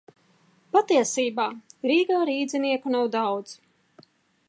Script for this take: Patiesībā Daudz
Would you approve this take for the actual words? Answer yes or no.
no